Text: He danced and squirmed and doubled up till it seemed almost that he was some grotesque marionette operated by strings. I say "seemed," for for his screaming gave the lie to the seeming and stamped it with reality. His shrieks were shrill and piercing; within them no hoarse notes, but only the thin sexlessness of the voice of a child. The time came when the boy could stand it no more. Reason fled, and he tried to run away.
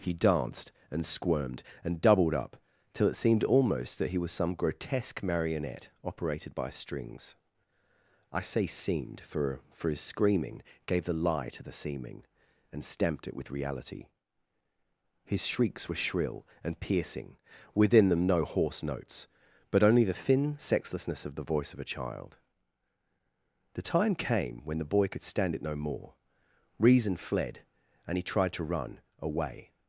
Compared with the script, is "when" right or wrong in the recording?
right